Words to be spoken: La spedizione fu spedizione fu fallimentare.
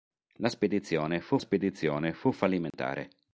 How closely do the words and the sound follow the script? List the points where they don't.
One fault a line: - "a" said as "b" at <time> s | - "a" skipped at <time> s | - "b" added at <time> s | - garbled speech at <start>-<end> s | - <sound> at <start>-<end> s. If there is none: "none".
- dropout at 2.7-2.7 s